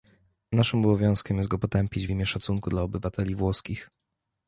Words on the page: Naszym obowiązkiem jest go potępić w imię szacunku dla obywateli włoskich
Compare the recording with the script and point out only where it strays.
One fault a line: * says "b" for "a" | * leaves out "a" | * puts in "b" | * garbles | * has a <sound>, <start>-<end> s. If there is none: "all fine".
all fine